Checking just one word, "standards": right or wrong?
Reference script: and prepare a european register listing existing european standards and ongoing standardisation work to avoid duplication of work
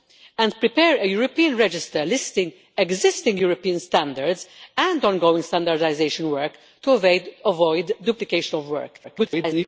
right